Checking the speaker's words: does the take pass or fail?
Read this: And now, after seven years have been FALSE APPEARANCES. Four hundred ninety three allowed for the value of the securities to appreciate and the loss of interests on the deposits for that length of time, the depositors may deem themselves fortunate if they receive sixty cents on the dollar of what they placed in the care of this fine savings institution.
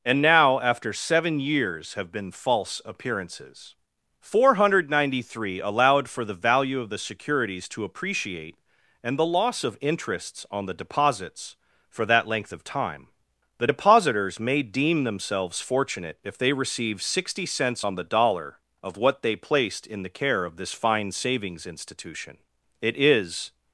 fail